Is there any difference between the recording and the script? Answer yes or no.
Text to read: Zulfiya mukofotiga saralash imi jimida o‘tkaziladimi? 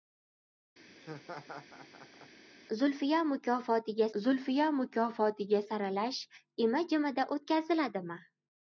yes